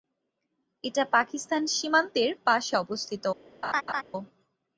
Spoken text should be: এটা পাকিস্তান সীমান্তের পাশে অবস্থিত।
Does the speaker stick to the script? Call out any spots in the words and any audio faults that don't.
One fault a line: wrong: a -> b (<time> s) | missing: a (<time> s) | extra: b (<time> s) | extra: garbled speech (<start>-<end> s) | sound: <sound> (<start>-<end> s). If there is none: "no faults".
sound: laugh (3.6-4.0 s)